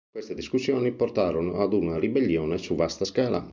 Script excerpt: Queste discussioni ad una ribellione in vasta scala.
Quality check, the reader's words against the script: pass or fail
fail